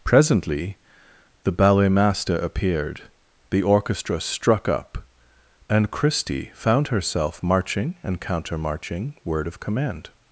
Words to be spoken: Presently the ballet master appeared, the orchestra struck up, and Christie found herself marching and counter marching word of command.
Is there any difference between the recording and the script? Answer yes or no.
no